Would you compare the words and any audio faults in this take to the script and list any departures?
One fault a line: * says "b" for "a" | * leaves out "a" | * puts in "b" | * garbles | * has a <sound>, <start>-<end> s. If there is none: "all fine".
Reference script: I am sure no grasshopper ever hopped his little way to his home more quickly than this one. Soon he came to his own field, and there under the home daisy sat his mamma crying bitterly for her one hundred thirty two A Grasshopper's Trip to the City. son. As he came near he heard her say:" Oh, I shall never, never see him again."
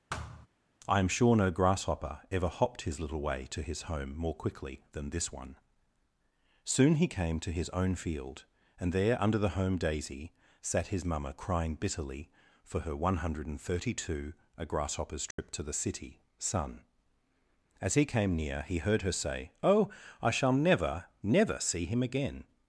* has a thud, 0.1-0.5 s
* has a dropout, 15.3-15.4 s